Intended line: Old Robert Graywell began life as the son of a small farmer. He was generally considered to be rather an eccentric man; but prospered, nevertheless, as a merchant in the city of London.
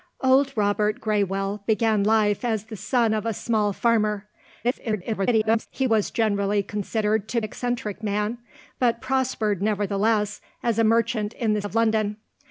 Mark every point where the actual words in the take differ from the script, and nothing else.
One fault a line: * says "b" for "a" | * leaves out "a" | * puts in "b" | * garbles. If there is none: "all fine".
* garbles
* leaves out "be rather an"
* leaves out "city"